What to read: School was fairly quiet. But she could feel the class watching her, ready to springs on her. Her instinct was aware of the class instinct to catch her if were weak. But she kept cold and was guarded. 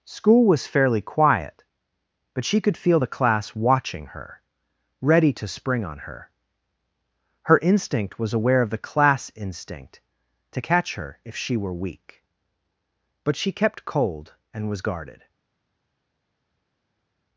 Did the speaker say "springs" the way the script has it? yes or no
no